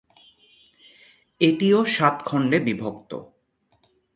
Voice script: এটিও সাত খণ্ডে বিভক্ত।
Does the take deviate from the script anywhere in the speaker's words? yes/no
no